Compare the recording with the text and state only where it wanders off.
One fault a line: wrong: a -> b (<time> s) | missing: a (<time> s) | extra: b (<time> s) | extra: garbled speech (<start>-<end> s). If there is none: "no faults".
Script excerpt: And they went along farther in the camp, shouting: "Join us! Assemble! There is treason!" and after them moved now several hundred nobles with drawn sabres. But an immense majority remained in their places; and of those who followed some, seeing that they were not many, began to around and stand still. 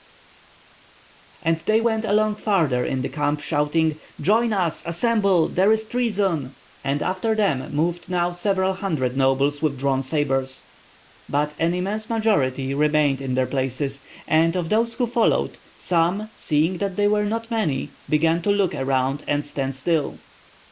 extra: look (18.5 s)